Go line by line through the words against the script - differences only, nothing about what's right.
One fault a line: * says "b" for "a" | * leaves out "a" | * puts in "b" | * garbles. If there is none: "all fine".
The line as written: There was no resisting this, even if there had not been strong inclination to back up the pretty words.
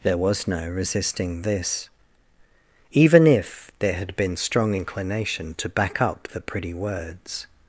* leaves out "not"